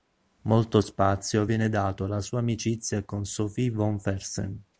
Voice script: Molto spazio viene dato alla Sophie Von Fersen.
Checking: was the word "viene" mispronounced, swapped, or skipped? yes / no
no